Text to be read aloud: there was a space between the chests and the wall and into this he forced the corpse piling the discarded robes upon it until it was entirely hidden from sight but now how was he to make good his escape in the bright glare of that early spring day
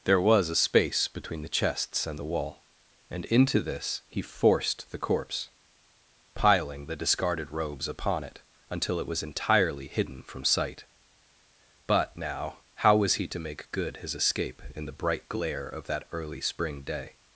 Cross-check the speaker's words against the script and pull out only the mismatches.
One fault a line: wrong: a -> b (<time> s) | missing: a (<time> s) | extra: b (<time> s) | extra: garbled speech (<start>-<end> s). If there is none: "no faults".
no faults